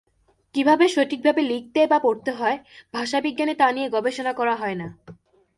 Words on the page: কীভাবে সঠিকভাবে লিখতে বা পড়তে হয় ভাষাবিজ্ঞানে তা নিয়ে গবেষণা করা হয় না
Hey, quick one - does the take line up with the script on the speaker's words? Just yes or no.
yes